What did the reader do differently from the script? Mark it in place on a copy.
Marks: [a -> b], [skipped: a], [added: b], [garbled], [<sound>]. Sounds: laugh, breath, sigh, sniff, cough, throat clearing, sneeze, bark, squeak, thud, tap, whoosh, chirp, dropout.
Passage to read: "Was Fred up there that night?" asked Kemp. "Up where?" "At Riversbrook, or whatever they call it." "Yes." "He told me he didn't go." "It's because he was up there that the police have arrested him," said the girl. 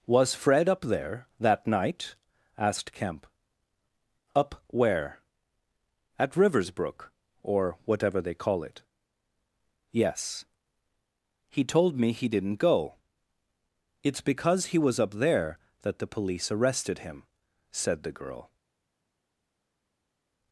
"Was Fred up there that night?" asked Kemp. "Up where?" "At Riversbrook, or whatever they call it." "Yes." "He told me he didn't go." "It's because he was up there that the police [skipped: have] arrested him," said the girl.